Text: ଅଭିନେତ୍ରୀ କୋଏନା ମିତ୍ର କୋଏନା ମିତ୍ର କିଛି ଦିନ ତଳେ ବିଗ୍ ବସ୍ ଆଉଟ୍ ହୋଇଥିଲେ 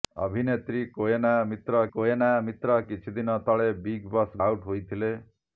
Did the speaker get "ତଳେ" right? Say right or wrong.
right